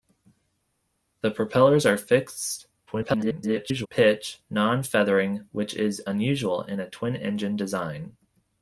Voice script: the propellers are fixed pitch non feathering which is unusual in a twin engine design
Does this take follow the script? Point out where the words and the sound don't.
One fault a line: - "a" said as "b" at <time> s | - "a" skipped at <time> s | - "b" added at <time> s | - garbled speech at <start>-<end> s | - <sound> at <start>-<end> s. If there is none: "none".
- garbled speech at 2.9-3.9 s